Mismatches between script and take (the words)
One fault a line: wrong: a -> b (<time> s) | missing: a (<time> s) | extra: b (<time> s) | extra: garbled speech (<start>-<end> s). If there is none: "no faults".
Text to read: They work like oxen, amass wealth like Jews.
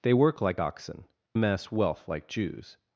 no faults